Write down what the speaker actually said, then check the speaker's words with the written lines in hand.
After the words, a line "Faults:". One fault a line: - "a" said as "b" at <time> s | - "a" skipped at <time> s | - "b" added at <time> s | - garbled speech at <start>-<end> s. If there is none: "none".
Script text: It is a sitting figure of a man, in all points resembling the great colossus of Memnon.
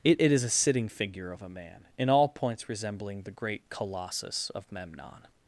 It it is a sitting figure of a man, in all points resembling the great colossus of Memnon.
Faults:
- "it" added at 0.2 s